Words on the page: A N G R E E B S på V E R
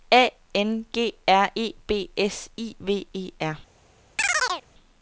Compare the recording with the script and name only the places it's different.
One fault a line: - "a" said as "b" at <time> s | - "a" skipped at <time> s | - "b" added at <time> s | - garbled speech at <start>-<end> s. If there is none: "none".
- "E" skipped at 1.7 s
- "på" said as "I" at 2.6 s